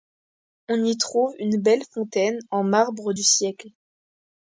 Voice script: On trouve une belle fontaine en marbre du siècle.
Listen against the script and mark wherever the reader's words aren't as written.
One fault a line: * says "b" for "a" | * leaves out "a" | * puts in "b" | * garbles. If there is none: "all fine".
* puts in "y"